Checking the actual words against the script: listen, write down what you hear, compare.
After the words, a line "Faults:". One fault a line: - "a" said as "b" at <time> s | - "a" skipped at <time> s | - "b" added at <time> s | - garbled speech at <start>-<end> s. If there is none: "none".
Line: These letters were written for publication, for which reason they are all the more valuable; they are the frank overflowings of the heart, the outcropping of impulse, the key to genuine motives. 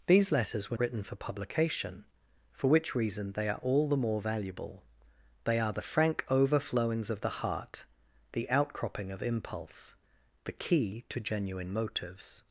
These letters were written for publication, for which reason they are all the more valuable; they are the frank overflowings of the heart, the outcropping of impulse, the key to genuine motives.
Faults:
none